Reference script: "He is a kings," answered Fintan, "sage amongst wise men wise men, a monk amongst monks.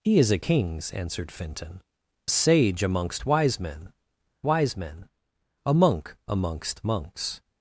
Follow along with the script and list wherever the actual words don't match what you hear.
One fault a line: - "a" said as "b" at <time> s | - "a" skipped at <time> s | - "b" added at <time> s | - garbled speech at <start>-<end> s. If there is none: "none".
none